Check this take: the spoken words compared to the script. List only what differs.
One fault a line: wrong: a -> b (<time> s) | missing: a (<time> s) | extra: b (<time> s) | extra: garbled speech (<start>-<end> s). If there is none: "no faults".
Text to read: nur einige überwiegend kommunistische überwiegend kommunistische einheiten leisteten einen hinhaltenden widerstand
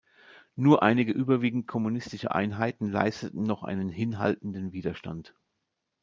missing: überwiegend kommunistische (2.3 s)
extra: noch (3.5 s)